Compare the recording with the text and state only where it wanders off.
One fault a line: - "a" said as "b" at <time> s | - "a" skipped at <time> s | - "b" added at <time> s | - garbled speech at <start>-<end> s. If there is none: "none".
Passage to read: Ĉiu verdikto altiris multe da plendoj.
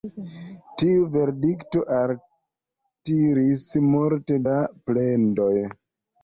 - "Ĉiu" said as "Tiu" at 0.8 s